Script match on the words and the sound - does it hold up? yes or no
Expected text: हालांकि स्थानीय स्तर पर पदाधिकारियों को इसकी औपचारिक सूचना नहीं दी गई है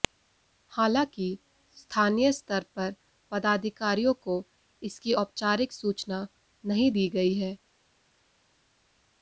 yes